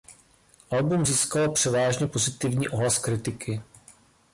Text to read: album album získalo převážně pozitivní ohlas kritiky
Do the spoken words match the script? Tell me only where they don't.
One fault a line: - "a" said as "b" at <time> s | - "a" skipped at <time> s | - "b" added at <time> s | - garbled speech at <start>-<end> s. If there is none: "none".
- "album" skipped at 1.1 s